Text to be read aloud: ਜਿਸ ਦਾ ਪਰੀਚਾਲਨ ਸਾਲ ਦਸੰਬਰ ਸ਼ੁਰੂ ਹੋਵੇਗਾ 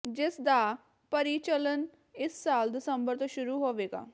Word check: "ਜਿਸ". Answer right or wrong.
right